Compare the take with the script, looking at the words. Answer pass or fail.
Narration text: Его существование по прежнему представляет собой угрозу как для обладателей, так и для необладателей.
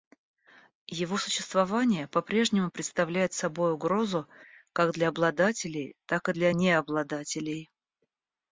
pass